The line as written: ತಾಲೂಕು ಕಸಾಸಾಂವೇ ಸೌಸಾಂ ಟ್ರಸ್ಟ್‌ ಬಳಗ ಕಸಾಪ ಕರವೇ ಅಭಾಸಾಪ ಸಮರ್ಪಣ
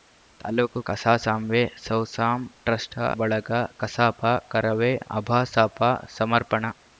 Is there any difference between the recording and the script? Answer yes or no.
no